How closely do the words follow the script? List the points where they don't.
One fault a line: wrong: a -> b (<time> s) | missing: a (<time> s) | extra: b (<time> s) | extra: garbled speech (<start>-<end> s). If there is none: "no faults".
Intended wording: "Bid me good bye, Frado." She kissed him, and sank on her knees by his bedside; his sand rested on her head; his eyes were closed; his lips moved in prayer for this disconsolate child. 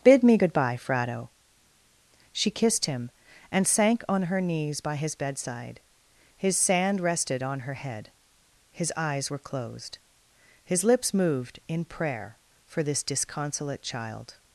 no faults